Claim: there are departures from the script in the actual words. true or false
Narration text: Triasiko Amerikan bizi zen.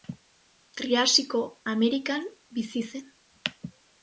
false